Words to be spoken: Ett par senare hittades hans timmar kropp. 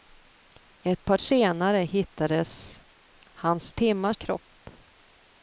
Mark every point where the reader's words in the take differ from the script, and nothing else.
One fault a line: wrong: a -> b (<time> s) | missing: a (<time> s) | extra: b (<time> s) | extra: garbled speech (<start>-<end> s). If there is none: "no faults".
no faults